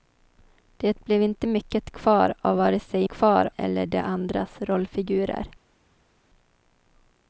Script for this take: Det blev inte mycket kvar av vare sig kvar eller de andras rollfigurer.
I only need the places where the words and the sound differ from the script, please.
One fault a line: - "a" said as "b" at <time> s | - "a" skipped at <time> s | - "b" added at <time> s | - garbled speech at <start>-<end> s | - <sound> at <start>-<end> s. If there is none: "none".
none